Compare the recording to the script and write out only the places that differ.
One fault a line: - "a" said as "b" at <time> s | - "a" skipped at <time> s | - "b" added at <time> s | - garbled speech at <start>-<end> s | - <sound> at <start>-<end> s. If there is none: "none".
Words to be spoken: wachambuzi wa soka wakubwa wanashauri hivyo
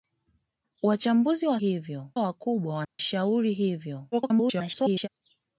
- "soka" said as "hivyo" at 1.6 s
- dropout at 2.8-3.0 s
- garbled speech at 4.1-5.1 s